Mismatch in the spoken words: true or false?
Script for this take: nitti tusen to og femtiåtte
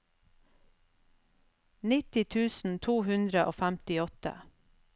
true